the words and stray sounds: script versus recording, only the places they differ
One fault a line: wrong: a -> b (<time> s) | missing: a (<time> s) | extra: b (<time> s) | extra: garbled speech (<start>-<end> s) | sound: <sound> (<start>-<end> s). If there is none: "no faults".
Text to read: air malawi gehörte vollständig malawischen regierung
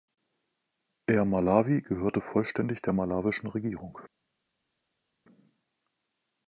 extra: der (2.8 s)